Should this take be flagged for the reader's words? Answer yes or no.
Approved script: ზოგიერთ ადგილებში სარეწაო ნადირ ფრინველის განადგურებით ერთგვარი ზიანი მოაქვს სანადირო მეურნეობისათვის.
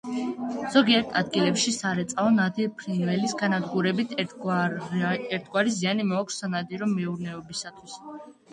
no